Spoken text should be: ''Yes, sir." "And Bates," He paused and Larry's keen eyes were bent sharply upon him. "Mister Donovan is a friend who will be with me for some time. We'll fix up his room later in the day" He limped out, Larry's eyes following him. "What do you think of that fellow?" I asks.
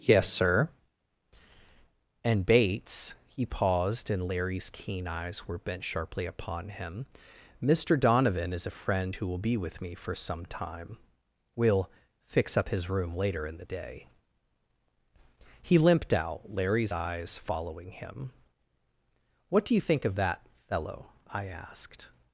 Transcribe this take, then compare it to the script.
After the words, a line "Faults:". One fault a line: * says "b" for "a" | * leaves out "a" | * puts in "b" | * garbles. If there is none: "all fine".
''Yes, sir." "And Bates," He paused and Larry's keen eyes were bent sharply upon him. "Mister Donovan is a friend who will be with me for some time. We'll fix up his room later in the day" He limped out, Larry's eyes following him. "What do you think of that fellow?" I asked.
Faults:
* says "asked" for "asks"